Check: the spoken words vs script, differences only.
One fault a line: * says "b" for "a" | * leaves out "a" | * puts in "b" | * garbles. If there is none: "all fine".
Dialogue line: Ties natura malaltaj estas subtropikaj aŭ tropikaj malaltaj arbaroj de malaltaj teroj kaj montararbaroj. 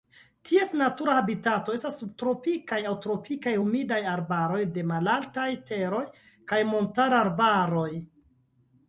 * says "habitato" for "malaltaj"
* says "humidaj" for "malaltaj"